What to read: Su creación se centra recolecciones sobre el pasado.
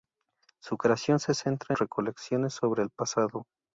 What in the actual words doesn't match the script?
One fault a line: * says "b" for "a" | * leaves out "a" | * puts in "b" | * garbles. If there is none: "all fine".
all fine